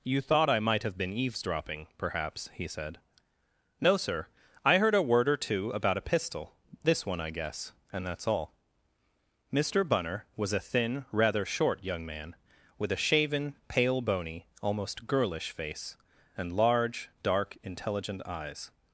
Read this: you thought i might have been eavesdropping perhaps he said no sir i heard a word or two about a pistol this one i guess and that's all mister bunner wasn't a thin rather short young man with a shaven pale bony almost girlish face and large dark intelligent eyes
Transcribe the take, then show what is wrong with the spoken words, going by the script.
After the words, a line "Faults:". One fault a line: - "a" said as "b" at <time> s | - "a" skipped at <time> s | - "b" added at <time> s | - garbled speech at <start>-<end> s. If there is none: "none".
you thought i might have been eavesdropping perhaps he said no sir i heard a word or two about a pistol this one i guess and that's all mister bunner was a thin rather short young man with a shaven pale bony almost girlish face and large dark intelligent eyes
Faults:
- "wasn't" said as "was" at 10.4 s